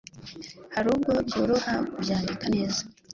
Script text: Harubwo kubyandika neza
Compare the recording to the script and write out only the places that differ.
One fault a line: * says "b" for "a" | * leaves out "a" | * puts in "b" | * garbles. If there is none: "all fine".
* puts in "byoroha"